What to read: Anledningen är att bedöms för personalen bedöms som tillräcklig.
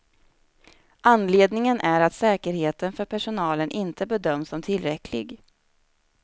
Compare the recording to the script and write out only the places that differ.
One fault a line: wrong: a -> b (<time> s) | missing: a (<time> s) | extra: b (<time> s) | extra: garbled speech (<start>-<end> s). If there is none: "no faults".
wrong: bedöms -> säkerheten (2.1 s)
extra: inte (3.7 s)